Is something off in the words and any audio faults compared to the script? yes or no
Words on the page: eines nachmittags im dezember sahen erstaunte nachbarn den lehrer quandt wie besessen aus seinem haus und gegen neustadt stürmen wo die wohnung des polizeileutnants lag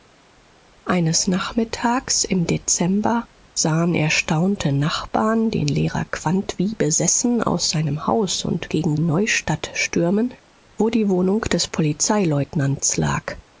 no